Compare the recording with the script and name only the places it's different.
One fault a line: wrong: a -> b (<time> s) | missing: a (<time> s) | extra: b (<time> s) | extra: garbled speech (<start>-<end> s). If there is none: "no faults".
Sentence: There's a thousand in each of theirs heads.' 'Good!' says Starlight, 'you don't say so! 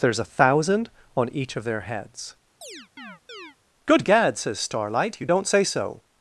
wrong: in -> on (1.1 s)
wrong: theirs -> their (1.6 s)
extra: gad (4.0 s)